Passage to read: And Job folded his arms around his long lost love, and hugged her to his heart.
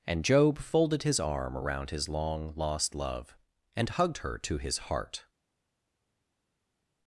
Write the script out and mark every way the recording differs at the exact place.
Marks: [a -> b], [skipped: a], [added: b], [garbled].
And Job folded his [arms -> arm] around his long lost love, and hugged her to his heart.